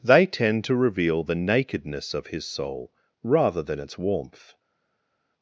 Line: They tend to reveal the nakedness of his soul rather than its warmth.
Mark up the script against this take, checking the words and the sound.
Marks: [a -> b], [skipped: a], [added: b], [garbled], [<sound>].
They tend to reveal the nakedness of his soul rather than its warmth.